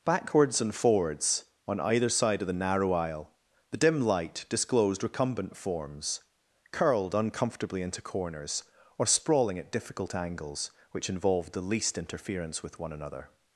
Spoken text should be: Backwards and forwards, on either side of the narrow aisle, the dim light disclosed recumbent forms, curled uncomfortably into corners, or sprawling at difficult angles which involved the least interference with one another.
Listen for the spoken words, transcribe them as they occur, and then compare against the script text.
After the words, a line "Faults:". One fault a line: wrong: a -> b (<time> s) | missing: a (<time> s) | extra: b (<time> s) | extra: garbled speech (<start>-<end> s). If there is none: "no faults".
Backwards and forwards, on either side of the narrow aisle, the dim light disclosed recumbent forms, curled uncomfortably into corners, or sprawling at difficult angles which involved the least interference with one another.
Faults:
no faults